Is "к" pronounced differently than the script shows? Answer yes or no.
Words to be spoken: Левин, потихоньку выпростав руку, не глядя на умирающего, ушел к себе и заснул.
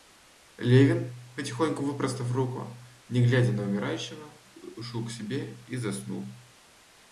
no